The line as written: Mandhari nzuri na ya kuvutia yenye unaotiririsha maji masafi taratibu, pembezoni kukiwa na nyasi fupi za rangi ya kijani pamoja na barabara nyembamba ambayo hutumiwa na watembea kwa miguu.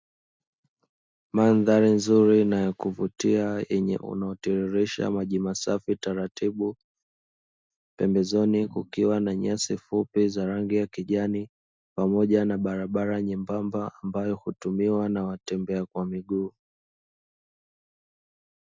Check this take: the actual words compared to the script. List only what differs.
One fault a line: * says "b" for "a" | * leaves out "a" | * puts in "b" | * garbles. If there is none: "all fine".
all fine